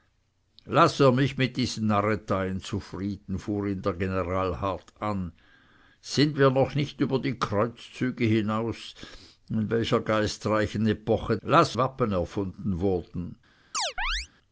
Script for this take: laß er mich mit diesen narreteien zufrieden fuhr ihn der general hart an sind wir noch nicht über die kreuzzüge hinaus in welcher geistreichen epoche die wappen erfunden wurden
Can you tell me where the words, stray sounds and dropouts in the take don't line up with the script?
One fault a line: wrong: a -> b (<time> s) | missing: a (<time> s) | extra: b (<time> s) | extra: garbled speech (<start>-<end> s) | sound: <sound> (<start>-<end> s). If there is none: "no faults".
wrong: die -> laß (11.4 s)
sound: chirp (13.7-14.3 s)